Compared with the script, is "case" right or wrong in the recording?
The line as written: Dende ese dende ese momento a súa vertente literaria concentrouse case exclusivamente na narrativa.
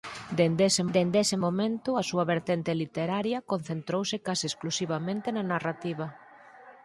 right